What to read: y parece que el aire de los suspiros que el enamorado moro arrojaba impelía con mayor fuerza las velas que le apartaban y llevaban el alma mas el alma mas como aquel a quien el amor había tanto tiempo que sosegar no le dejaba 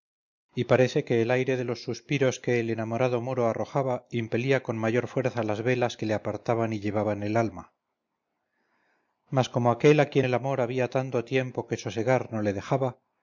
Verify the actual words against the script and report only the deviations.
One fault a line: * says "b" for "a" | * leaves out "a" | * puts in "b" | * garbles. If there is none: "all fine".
* leaves out "el alma mas"